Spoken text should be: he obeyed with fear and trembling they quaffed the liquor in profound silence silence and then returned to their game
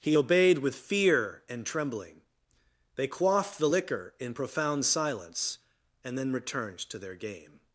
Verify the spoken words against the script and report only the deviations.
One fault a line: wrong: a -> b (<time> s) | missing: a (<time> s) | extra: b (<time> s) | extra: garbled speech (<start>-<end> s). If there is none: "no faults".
missing: silence (5.6 s)